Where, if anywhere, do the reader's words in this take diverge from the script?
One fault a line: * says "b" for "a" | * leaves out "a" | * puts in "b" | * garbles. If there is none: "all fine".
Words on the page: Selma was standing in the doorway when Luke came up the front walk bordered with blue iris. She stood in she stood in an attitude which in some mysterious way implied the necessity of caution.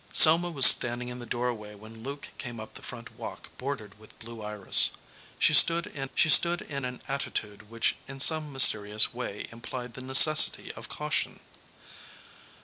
all fine